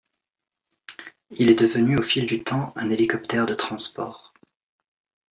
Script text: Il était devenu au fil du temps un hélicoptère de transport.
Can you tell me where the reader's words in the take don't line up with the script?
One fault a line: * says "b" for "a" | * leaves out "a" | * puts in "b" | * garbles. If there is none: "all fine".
* says "est" for "était"